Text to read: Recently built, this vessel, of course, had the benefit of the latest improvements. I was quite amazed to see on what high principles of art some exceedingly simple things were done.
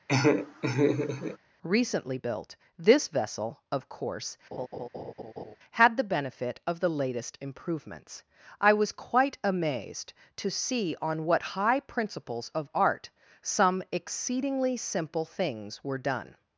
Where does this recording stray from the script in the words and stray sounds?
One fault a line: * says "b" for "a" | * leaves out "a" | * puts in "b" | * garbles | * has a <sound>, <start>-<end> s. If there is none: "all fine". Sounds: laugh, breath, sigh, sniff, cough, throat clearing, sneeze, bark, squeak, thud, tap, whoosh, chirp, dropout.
* has a laugh, 0.1-1.4 s
* has a laugh, 4.5-5.6 s